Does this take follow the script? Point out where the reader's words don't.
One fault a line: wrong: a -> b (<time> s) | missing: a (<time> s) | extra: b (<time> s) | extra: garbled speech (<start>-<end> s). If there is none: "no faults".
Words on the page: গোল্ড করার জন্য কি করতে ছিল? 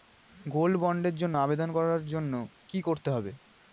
extra: বন্ডের জন্য আবেদন (0.8 s)
wrong: ছিল -> হবে (3.1 s)